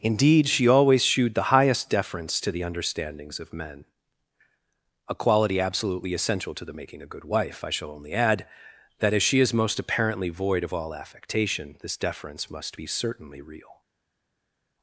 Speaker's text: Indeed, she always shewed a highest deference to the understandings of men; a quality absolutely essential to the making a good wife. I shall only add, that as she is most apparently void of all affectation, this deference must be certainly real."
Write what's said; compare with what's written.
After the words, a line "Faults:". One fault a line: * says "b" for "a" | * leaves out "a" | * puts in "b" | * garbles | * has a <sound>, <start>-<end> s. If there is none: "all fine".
Indeed, she always shewed the highest deference to the understandings of men; a quality absolutely essential to the making a good wife. I shall only add, that as she is most apparently void of all affectation, this deference must be certainly real."
Faults:
* says "the" for "a"